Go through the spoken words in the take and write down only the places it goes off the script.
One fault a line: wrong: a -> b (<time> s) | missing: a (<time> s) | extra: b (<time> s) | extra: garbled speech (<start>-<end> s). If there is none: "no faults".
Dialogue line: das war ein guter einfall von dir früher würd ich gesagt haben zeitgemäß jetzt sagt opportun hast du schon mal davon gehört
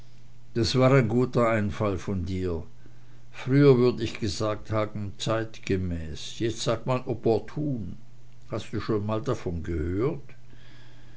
extra: man (6.9 s)